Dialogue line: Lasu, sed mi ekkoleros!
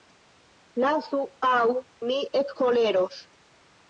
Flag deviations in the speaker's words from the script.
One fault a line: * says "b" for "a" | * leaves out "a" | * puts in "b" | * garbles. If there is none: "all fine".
* says "aŭ" for "sed"